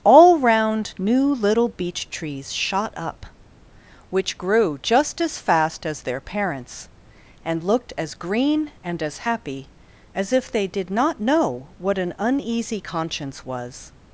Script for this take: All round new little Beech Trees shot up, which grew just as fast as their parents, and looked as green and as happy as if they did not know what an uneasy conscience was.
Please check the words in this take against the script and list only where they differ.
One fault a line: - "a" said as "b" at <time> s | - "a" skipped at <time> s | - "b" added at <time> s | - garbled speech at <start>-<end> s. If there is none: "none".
none